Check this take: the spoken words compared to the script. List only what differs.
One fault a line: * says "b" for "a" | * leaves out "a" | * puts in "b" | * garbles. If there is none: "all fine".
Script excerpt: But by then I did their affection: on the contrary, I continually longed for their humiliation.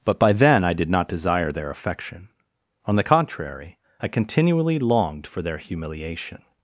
* puts in "not desire"